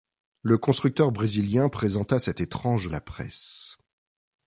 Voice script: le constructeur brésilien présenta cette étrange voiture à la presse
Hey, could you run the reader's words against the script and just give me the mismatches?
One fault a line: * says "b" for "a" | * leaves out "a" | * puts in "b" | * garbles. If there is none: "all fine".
* leaves out "voiture"